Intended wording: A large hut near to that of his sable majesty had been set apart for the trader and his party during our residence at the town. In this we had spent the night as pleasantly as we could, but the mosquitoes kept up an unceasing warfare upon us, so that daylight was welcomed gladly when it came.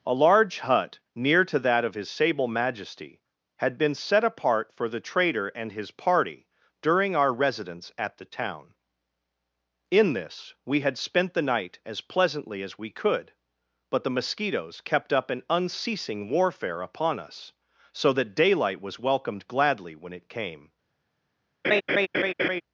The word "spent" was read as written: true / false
true